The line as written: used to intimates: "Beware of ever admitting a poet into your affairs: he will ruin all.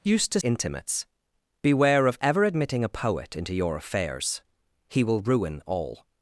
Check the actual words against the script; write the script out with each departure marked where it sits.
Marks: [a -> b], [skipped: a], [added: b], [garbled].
used to intimates: "Beware of ever admitting a poet into your affairs: he will ruin all.